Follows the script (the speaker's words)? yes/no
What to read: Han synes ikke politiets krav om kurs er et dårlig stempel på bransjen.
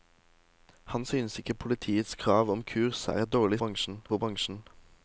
no